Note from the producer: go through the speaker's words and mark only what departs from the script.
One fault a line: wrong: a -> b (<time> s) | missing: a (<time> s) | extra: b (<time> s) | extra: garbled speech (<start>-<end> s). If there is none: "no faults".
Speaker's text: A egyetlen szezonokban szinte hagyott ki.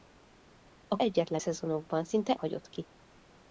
no faults